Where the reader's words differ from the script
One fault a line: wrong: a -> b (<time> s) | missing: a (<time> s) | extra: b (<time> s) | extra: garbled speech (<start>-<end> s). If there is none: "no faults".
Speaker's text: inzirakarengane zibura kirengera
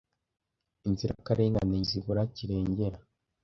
no faults